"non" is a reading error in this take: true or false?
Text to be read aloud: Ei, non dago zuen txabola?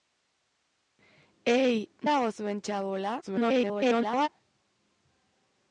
true